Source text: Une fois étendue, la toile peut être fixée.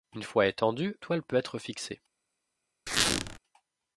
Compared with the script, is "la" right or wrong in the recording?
wrong